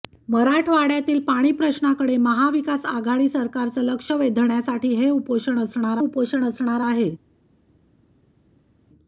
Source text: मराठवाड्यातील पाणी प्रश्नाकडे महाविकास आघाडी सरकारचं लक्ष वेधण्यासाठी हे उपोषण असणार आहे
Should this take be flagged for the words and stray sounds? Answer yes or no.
yes